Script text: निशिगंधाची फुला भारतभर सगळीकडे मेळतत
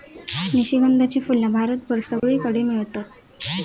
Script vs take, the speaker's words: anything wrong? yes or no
no